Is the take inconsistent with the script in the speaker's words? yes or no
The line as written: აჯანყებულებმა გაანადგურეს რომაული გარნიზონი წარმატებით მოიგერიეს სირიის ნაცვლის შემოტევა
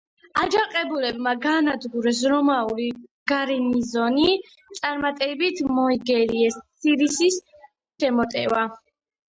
yes